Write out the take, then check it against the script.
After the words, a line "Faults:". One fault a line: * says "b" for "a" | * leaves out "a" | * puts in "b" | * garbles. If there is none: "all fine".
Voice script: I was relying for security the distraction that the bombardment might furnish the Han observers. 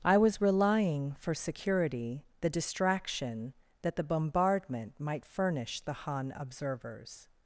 I was relying for security the distraction that the bombardment might furnish the Han observers.
Faults:
all fine